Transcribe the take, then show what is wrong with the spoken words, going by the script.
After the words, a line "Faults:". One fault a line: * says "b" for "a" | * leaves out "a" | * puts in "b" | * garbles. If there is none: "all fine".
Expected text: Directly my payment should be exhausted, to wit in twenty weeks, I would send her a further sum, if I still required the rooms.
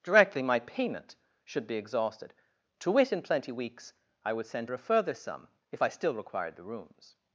Directly my payment should be exhausted, to wit in plenty weeks, I would send her a further sum, if I still required the rooms.
Faults:
* says "plenty" for "twenty"